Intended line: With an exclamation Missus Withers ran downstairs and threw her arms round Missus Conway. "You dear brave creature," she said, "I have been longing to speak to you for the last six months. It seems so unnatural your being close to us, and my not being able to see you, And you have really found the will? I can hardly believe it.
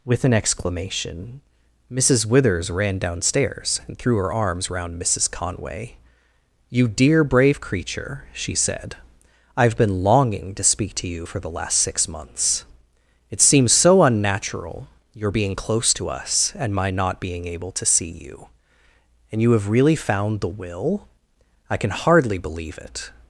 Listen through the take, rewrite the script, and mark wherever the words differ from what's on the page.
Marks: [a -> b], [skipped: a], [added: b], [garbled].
With an exclamation Missus Withers ran downstairs and threw her arms round Missus Conway. "You dear brave creature," she said, "I have been longing to speak to you for the last six months. It seems so unnatural your being close to us, and my not being able to see you, And you have really found the will? I can hardly believe it.